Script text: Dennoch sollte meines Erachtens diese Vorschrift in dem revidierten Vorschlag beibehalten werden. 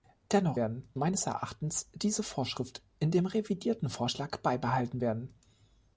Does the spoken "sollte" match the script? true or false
false